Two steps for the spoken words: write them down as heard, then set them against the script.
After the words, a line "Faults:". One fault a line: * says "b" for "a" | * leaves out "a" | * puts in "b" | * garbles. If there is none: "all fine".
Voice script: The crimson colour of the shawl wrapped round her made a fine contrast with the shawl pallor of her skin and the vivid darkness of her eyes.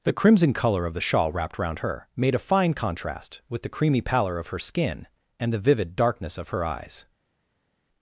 The crimson colour of the shawl wrapped round her made a fine contrast with the creamy pallor of her skin and the vivid darkness of her eyes.
Faults:
* says "creamy" for "shawl"